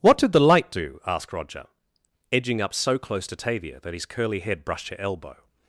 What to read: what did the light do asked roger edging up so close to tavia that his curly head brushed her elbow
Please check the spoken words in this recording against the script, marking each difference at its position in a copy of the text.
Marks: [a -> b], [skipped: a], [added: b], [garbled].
what did the light do asked roger edging up so close to tavia that his curly head brushed her elbow